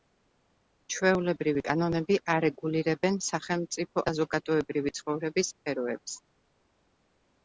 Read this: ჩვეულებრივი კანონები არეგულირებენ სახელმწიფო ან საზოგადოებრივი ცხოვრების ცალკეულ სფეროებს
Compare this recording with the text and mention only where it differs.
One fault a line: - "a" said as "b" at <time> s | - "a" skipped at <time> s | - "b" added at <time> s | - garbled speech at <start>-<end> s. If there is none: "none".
- "ან" skipped at 4.0 s
- "ცალკეულ" skipped at 5.5 s